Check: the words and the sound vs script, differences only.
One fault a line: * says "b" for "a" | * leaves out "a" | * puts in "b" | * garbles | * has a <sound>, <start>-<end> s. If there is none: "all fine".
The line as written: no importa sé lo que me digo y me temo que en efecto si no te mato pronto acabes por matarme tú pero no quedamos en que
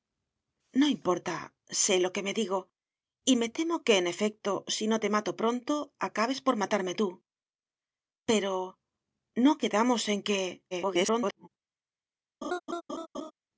* garbles
* has a laugh, 12.4-13.3 s